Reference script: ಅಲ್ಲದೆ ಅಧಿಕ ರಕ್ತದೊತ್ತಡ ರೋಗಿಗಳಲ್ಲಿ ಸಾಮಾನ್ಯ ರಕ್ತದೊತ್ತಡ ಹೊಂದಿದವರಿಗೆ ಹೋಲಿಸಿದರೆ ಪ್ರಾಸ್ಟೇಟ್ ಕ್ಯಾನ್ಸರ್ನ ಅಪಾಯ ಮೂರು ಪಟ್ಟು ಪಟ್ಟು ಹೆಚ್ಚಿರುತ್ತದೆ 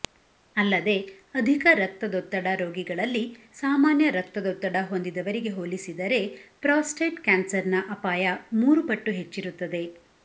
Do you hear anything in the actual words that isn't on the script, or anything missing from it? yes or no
yes